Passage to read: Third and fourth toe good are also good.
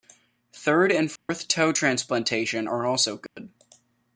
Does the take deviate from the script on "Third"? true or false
false